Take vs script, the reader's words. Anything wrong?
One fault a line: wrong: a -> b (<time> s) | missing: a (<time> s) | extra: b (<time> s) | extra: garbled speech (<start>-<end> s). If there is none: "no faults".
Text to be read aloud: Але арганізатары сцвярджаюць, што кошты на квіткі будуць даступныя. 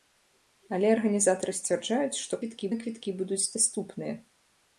wrong: кошты -> квіткі (2.4 s)